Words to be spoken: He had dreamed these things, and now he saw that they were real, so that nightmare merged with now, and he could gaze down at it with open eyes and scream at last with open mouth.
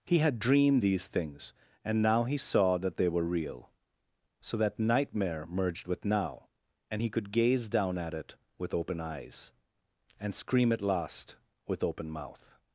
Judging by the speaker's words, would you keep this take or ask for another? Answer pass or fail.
pass